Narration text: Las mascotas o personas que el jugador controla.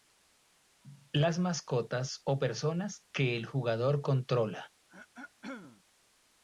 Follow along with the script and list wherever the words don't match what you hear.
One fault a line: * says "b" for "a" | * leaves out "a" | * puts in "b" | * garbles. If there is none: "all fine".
all fine